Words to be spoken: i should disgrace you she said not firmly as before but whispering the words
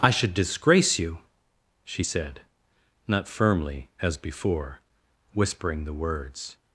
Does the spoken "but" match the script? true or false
false